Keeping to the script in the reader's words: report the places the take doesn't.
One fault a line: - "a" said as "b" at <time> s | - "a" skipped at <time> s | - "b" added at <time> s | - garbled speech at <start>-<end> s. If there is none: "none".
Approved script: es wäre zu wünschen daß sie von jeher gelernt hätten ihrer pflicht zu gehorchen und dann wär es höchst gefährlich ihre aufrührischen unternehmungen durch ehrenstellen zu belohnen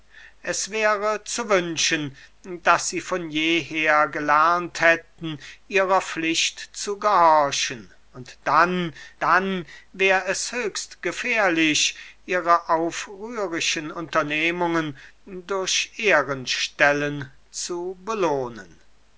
- "dann" added at 9.2 s